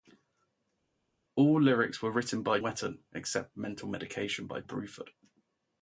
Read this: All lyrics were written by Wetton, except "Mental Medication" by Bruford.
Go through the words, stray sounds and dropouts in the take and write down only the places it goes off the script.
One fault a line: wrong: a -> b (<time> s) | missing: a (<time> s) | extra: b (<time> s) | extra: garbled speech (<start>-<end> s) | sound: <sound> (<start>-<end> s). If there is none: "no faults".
no faults